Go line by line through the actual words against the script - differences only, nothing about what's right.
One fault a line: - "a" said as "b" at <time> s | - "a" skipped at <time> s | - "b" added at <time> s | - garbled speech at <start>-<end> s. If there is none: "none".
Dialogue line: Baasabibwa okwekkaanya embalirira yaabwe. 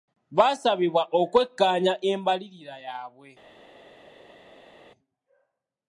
none